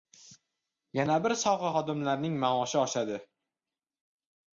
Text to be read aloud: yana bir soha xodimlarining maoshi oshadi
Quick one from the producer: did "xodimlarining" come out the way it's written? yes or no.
yes